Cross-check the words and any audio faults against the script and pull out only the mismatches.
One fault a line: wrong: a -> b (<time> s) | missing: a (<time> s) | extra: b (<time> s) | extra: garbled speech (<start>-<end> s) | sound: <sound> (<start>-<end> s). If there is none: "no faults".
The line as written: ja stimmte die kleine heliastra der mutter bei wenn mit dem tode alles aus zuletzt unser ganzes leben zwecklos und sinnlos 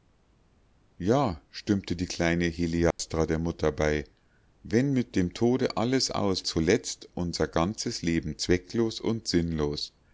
sound: dropout (2.9-3.0 s)